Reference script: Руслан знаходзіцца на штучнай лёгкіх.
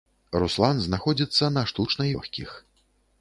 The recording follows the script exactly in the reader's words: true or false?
true